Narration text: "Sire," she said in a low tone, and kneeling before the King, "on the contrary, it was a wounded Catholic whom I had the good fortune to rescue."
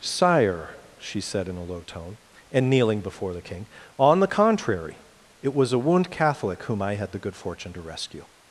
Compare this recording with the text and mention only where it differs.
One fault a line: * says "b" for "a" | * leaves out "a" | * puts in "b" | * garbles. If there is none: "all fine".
* says "wound" for "wounded"